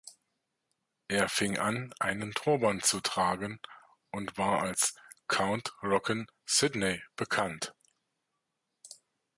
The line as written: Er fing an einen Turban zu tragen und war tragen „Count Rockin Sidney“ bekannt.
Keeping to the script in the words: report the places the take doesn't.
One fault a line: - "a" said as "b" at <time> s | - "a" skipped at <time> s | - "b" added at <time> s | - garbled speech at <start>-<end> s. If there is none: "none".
- "tragen" said as "als" at 4.6 s